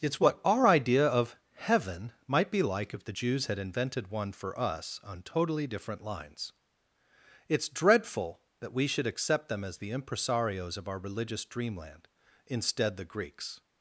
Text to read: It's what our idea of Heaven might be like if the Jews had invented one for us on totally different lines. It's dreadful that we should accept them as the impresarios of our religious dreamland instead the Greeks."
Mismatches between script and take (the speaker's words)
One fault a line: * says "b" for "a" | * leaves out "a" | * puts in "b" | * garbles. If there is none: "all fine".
all fine